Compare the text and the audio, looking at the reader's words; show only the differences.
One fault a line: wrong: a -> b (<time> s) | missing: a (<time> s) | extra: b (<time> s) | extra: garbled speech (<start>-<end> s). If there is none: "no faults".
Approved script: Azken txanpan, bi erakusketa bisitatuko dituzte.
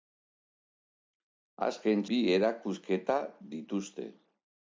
missing: txanpan (2.0 s)
missing: bisitatuko (3.2 s)